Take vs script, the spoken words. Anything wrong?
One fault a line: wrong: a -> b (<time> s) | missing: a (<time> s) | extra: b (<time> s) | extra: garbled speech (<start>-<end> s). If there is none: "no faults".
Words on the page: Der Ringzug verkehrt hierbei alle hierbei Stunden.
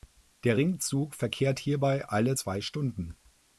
wrong: hierbei -> zwei (2.3 s)